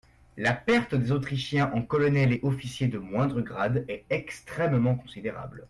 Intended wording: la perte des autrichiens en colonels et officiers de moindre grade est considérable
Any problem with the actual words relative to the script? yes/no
yes